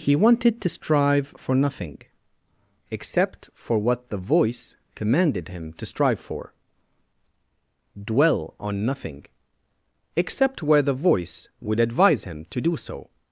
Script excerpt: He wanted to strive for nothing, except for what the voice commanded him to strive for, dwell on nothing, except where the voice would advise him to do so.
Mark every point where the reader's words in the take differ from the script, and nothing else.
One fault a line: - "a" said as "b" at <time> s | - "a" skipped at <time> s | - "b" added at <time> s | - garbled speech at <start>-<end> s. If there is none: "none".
none